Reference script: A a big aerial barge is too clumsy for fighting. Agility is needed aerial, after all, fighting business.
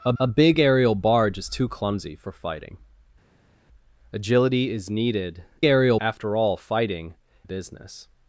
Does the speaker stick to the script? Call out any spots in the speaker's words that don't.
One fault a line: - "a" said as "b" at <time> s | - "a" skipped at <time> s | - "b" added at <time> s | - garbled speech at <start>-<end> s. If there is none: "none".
none